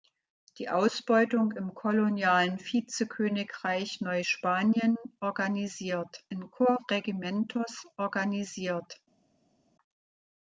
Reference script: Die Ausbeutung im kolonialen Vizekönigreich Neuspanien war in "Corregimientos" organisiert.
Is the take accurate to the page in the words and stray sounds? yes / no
no